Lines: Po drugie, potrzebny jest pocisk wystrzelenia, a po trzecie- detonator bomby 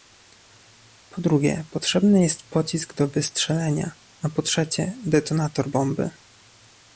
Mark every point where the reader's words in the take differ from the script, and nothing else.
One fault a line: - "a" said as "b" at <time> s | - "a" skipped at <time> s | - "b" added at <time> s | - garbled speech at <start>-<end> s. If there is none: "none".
- "do" added at 2.9 s